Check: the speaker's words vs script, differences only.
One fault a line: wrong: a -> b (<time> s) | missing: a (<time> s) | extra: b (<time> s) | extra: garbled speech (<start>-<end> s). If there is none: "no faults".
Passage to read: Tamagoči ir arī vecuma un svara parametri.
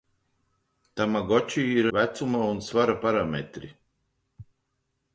missing: arī (1.9 s)